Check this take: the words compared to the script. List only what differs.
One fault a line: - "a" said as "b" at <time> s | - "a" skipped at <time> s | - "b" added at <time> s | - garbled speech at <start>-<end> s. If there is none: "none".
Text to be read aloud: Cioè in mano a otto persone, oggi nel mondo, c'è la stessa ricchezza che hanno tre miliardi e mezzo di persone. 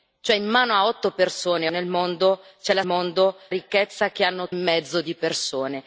- "oggi" skipped at 1.7 s
- "stessa" said as "mondo" at 2.8 s
- "tre miliardi e" skipped at 4.5 s